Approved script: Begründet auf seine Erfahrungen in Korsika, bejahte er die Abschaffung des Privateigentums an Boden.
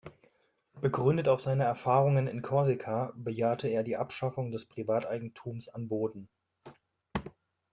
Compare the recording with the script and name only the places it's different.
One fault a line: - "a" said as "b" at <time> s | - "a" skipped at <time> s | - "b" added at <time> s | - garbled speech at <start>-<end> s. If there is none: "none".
none